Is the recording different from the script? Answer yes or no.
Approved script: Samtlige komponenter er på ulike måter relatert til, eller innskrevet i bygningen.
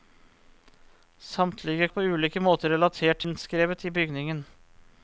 yes